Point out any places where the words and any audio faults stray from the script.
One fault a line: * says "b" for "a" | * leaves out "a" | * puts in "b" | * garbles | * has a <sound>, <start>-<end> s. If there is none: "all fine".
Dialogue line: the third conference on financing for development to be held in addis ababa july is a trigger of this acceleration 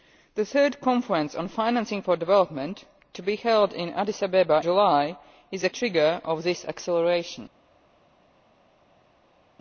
all fine